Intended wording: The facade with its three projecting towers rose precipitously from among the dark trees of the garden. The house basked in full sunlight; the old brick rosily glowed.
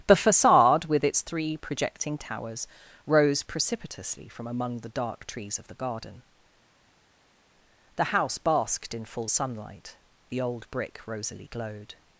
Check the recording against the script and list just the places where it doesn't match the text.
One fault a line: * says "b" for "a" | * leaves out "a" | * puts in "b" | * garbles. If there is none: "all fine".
all fine